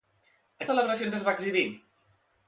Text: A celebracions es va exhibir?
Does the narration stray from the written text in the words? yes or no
no